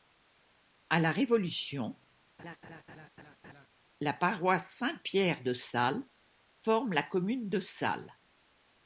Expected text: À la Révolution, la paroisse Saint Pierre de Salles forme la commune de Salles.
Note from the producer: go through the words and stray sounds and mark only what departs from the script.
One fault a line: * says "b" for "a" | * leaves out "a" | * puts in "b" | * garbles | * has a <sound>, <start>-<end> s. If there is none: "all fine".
* has a laugh, 2.4-3.7 s